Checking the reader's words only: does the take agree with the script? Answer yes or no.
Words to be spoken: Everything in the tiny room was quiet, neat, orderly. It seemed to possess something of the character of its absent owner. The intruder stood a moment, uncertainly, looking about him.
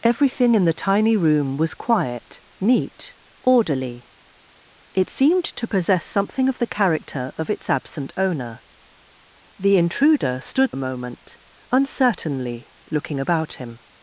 yes